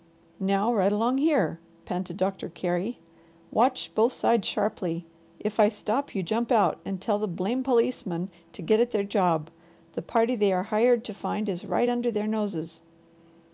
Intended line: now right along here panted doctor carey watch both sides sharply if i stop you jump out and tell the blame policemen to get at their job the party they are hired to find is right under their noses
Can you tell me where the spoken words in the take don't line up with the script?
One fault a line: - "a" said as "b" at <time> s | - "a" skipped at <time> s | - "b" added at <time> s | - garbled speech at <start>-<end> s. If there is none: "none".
none